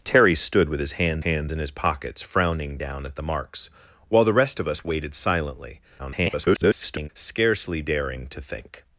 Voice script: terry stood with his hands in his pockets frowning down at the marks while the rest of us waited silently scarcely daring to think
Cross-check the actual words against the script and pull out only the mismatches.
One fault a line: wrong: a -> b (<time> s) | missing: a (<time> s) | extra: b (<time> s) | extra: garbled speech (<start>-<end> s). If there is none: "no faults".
extra: hands (1.2 s)
extra: garbled speech (6.0-7.1 s)